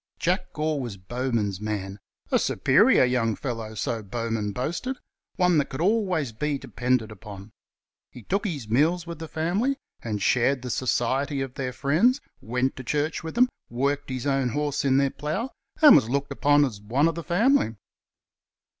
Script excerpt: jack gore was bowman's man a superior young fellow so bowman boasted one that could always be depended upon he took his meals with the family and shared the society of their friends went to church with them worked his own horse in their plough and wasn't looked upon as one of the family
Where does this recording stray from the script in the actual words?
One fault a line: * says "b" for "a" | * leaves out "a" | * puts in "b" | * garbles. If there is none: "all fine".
* says "was" for "wasn't"